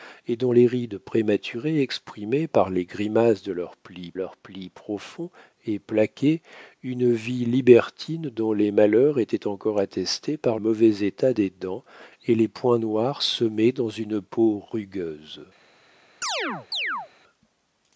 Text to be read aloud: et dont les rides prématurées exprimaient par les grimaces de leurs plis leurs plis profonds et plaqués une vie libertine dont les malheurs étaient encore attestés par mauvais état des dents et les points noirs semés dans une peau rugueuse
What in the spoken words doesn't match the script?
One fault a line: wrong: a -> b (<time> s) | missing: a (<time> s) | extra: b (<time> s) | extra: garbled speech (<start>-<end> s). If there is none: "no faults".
no faults